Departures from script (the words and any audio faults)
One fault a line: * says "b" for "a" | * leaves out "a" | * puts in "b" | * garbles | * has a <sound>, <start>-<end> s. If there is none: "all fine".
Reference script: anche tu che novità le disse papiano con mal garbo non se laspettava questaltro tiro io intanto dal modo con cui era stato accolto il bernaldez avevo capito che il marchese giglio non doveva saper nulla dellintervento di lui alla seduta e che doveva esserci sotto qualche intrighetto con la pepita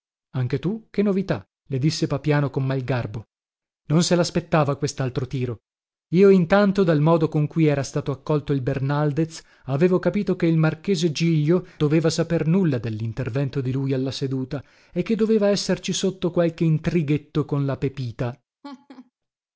* leaves out "non"
* has a laugh, 18.6-19.1 s